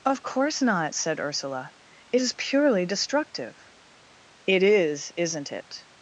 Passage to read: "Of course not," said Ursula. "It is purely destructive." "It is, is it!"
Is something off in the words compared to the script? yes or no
yes